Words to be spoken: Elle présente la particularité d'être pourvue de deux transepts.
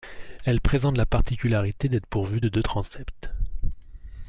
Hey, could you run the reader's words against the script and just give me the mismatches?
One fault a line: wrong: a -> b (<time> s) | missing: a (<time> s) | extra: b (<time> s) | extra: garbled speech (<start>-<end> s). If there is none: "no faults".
no faults